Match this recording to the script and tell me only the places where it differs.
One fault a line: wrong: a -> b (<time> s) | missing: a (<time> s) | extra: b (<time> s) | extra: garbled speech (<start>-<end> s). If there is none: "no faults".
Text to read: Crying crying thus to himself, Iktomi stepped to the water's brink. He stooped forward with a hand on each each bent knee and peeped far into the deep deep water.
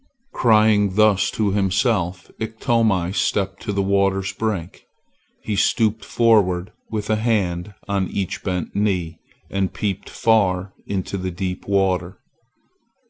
missing: crying (0.9 s)
missing: each (8.4 s)
missing: deep (11.7 s)